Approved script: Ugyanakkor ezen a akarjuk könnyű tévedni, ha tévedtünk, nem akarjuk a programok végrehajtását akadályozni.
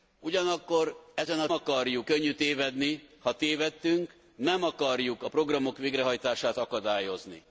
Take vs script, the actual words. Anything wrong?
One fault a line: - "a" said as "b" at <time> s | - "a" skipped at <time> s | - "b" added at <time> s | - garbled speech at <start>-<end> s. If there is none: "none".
none